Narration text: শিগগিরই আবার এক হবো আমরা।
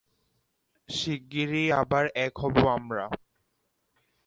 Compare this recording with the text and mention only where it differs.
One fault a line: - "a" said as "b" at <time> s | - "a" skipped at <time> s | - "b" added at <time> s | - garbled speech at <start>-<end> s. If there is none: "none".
none